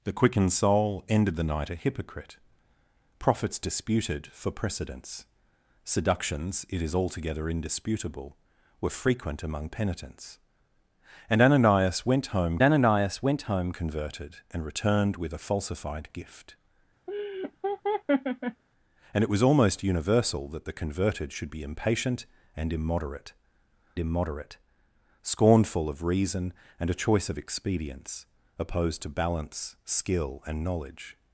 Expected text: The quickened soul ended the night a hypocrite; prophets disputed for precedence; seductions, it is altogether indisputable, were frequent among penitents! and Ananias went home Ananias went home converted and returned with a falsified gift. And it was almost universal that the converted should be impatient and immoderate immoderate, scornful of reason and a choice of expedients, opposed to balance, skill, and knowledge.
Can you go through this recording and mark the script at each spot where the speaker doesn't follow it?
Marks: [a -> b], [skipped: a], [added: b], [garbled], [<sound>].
The quickened soul ended the night a hypocrite; prophets disputed for precedence; seductions, it is altogether indisputable, were frequent among penitents! and Ananias went home Ananias went home converted and returned with a falsified gift. [laugh] And it was almost universal that the converted should be impatient and immoderate immoderate, scornful of reason and a choice of expedients, opposed to balance, skill, and knowledge.